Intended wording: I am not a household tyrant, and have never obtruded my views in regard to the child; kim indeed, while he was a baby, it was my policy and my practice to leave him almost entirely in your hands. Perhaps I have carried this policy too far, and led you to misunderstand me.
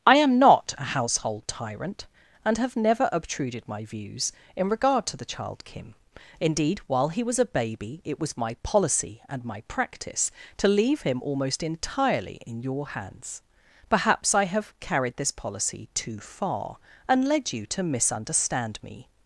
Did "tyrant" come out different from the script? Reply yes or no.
no